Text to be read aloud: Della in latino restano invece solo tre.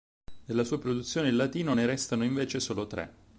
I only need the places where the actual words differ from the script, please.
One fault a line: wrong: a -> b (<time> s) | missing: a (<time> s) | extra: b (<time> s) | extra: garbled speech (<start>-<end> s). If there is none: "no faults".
extra: sua produzione (0.6 s)
extra: ne (1.7 s)